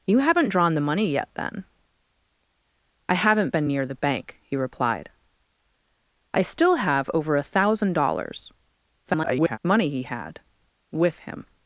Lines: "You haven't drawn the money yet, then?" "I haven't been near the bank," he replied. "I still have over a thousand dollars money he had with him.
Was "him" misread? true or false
false